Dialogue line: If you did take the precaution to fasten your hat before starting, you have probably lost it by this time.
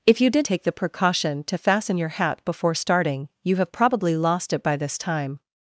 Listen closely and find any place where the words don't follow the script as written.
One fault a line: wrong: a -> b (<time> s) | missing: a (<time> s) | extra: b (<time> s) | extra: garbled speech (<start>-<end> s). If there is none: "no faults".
no faults